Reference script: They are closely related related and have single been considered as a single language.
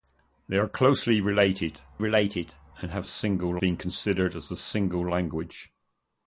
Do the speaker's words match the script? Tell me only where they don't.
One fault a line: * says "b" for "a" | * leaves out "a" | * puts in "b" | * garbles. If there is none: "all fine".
all fine